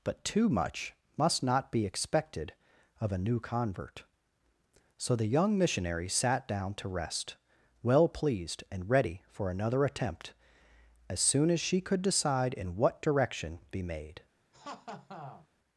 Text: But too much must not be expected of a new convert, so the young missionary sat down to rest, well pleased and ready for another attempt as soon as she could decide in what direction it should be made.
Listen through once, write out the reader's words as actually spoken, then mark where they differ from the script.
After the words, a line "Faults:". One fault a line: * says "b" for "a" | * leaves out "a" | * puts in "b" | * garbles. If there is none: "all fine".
But too much must not be expected of a new convert, so the young missionary sat down to rest, well pleased and ready for another attempt as soon as she could decide in what direction be made.
Faults:
* leaves out "it should"